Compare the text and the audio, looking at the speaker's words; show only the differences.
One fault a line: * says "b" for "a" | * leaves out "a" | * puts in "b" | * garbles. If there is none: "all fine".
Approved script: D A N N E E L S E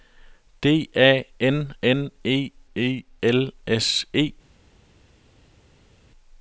all fine